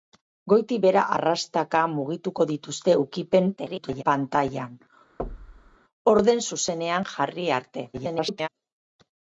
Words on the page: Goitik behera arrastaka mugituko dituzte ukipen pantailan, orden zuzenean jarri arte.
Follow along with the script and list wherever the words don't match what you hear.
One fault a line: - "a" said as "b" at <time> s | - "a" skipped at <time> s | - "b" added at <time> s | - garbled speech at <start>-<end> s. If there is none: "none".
- garbled speech at 3.6-4.0 s
- garbled speech at 7.9-8.5 s